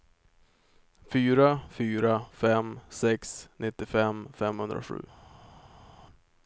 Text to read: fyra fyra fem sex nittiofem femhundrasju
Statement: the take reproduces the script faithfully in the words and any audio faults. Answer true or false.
true